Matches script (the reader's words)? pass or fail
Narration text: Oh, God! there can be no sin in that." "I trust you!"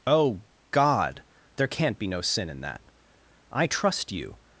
fail